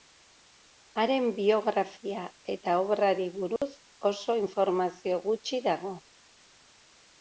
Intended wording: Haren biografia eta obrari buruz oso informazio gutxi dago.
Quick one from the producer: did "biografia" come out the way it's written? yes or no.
yes